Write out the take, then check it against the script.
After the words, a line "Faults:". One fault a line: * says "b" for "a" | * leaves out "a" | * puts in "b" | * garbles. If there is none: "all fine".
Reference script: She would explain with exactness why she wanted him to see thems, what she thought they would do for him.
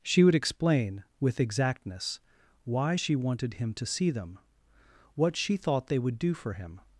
She would explain with exactness why she wanted him to see them, what she thought they would do for him.
Faults:
* says "them" for "thems"